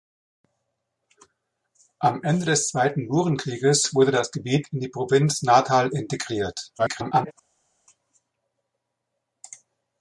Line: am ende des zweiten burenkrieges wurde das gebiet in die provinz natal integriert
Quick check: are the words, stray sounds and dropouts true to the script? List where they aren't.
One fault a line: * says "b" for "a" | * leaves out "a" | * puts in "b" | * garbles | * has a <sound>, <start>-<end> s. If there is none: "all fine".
* garbles